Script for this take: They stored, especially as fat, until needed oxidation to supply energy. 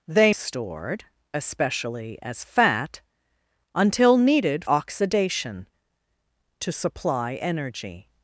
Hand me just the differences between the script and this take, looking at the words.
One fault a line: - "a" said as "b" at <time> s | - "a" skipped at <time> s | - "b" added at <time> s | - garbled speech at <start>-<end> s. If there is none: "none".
none